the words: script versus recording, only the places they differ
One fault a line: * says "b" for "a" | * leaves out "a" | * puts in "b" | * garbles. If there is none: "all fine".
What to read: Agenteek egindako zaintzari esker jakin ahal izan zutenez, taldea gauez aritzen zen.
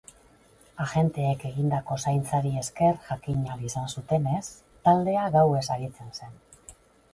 all fine